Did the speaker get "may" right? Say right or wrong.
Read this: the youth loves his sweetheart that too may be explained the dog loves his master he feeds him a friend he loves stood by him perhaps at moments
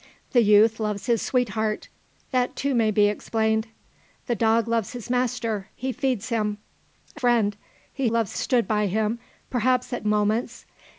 right